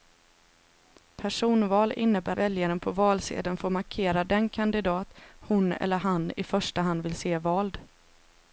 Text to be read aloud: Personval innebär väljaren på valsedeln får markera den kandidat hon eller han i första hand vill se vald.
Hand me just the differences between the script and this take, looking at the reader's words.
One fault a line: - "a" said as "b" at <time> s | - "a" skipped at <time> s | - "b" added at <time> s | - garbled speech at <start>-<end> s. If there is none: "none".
none